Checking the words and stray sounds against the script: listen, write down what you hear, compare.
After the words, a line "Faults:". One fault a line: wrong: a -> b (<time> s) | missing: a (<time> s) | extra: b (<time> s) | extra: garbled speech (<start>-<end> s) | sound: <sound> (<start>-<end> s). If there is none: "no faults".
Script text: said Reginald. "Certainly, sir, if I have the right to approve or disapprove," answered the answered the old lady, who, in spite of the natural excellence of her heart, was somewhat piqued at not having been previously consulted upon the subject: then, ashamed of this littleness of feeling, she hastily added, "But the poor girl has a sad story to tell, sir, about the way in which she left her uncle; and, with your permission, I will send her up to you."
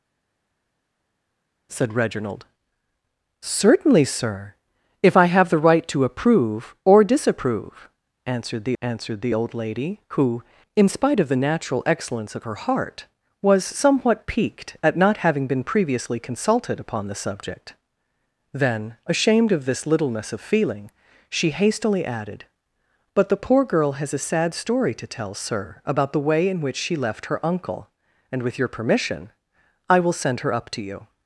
said Reginald. "Certainly, sir, if I have the right to approve or disapprove," answered the answered the old lady, who, in spite of the natural excellence of her heart, was somewhat piqued at not having been previously consulted upon the subject: then, ashamed of this littleness of feeling, she hastily added, "But the poor girl has a sad story to tell, sir, about the way in which she left her uncle; and, with your permission, I will send her up to you."
Faults:
no faults